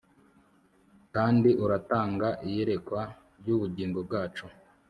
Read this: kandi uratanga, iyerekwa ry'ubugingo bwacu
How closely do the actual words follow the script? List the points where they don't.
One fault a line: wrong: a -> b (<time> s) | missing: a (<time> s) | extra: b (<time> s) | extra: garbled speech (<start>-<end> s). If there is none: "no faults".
no faults